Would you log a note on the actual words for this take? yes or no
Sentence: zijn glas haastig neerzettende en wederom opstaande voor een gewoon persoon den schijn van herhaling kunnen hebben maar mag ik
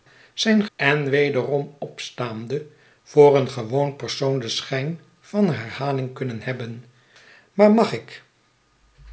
yes